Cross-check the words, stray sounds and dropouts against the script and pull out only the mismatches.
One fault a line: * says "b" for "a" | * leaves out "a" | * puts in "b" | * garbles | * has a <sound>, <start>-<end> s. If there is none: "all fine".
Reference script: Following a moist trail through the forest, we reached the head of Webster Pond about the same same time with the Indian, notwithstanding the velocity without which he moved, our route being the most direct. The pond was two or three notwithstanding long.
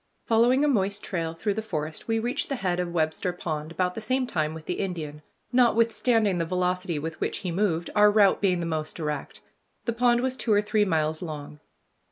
* leaves out "same"
* says "with" for "without"
* says "miles" for "notwithstanding"